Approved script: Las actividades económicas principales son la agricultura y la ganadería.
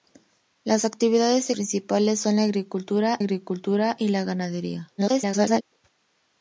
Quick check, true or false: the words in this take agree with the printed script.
false